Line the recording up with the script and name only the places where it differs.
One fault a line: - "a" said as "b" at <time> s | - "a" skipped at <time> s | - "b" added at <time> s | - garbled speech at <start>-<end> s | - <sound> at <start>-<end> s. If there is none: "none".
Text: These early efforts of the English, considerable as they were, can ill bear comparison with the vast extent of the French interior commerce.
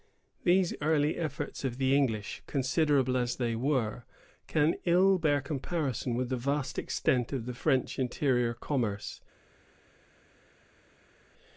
none